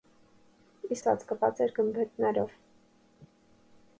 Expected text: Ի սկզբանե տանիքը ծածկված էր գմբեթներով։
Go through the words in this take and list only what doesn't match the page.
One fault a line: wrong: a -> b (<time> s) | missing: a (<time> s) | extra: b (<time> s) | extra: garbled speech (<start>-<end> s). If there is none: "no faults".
missing: սկզբանե տանիքը (1.0 s)